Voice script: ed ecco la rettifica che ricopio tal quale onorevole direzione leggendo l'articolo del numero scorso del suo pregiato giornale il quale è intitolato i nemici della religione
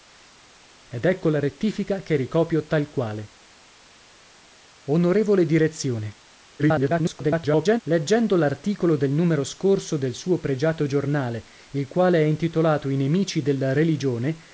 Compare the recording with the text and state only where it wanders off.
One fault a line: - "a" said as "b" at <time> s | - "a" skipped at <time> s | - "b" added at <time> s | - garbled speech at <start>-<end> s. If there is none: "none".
- garbled speech at 6.6-7.8 s